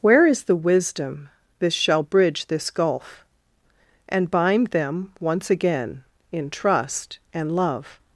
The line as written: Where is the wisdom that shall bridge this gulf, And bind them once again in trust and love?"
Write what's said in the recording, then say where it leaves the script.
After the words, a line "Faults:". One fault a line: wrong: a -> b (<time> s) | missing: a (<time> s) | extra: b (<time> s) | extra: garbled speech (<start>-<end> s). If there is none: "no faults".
Where is the wisdom this shall bridge this gulf, And bind them once again in trust and love?"
Faults:
wrong: that -> this (1.6 s)